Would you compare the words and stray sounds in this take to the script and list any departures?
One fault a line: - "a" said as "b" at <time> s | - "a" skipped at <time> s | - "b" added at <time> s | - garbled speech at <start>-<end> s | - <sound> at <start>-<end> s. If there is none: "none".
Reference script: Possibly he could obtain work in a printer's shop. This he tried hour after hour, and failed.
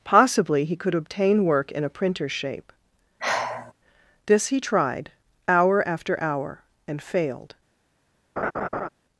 - "shop" said as "shape" at 2.3 s
- sigh at 3.2-3.7 s
- laugh at 8.4-8.9 s